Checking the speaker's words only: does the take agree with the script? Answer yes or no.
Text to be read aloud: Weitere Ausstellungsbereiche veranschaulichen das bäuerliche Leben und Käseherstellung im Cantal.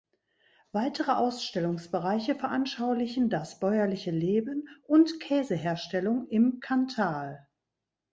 yes